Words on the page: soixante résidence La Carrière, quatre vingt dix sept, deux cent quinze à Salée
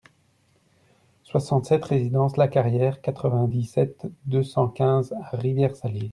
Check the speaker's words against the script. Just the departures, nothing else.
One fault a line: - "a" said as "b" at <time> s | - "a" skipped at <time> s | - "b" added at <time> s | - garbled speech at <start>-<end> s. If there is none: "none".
- "sept" added at 1.7 s
- "Rivière" added at 5.4 s